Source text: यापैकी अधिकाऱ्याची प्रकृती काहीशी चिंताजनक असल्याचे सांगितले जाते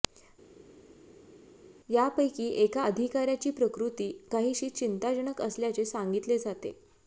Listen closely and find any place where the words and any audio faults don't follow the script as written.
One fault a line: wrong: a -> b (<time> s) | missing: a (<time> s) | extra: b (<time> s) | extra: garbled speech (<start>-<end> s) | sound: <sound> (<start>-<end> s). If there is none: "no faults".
extra: एका (2.6 s)